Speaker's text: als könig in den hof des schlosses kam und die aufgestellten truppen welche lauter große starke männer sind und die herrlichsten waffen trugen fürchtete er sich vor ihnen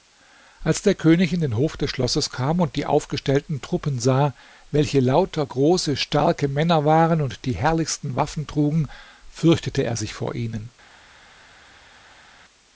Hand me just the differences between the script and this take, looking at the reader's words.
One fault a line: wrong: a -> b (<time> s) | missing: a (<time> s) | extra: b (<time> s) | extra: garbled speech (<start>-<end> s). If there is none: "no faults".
extra: der (0.8 s)
extra: sah (4.0 s)
wrong: sind -> waren (6.9 s)